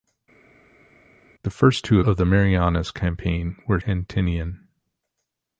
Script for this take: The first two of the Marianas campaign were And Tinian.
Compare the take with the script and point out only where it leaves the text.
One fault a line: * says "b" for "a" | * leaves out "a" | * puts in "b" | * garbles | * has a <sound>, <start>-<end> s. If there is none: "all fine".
all fine